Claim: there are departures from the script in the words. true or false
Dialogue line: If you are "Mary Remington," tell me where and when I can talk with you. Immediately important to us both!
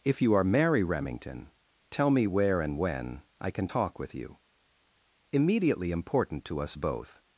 false